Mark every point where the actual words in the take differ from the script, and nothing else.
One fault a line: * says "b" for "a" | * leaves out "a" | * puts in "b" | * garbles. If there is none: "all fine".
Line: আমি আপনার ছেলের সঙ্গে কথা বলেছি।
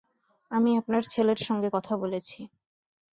all fine